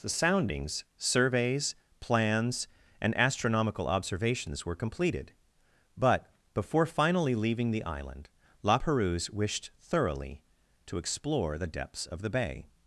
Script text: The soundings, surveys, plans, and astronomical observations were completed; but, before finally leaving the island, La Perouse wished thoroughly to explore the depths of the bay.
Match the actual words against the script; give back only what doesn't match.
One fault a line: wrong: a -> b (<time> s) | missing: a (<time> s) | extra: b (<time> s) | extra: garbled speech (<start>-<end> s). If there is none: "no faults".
no faults